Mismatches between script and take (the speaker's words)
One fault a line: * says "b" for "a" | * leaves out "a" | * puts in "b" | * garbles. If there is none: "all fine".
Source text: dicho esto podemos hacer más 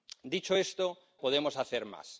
all fine